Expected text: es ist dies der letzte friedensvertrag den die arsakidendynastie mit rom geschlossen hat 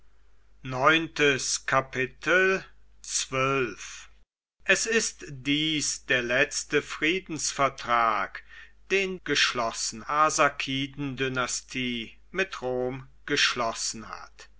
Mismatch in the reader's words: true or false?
true